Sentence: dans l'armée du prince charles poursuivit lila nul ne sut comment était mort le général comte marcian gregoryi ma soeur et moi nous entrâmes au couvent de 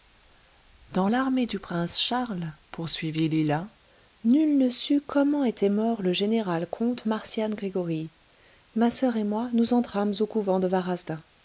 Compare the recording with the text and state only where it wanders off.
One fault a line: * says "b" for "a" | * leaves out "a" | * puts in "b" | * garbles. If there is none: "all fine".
all fine